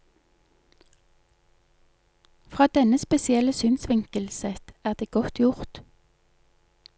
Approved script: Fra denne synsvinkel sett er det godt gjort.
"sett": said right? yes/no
yes